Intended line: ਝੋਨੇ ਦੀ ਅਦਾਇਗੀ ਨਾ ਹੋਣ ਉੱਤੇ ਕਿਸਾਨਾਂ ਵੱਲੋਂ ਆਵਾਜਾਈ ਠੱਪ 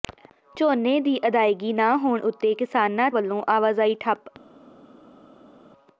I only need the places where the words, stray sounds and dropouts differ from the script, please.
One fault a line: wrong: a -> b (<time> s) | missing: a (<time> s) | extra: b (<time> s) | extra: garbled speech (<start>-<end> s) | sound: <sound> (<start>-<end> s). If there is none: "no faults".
no faults